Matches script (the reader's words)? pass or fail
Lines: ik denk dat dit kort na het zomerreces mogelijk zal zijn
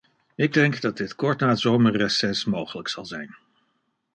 pass